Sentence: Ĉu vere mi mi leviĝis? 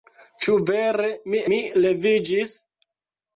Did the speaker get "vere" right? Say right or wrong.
right